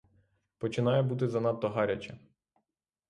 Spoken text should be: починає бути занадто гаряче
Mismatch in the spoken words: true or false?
false